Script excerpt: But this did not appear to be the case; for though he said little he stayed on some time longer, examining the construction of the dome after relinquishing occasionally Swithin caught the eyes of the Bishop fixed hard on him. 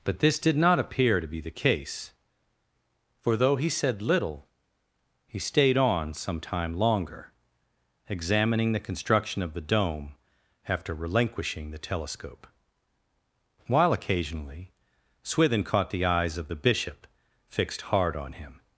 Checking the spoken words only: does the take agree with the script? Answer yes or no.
no